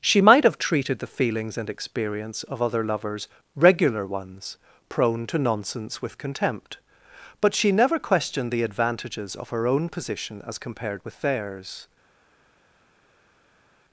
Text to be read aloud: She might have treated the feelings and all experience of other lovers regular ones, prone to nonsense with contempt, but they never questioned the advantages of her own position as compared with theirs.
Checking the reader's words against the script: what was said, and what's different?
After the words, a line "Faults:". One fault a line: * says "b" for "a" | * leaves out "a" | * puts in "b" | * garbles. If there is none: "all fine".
She might have treated the feelings and experience of other lovers regular ones, prone to nonsense with contempt, but she never questioned the advantages of her own position as compared with theirs.
Faults:
* leaves out "all"
* says "she" for "they"